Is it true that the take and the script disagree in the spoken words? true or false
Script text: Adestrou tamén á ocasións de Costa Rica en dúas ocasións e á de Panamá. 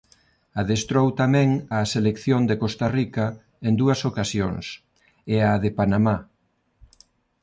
true